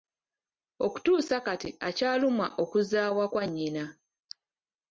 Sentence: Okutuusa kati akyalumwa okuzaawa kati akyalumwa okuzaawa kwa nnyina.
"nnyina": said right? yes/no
yes